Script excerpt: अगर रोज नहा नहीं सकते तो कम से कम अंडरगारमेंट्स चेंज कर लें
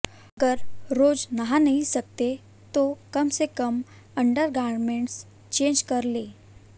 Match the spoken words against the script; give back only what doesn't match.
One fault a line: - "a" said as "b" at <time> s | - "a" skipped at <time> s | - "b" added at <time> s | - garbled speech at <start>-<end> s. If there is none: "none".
none